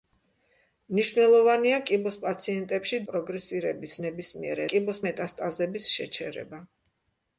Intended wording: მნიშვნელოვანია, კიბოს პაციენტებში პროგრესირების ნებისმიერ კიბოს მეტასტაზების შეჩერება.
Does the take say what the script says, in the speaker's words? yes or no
yes